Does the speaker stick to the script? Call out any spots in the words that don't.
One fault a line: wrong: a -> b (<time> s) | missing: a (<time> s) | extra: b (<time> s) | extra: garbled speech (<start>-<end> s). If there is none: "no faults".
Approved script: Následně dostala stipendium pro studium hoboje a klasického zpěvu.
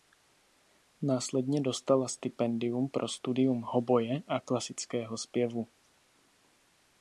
no faults